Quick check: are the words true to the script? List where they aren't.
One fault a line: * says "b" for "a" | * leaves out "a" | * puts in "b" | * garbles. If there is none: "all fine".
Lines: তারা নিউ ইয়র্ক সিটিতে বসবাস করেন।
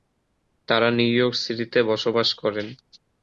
all fine